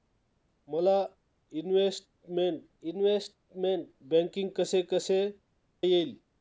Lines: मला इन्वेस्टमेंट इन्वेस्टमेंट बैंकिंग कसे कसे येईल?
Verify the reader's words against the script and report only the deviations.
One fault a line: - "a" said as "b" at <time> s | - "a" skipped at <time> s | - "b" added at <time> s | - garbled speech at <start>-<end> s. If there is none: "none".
none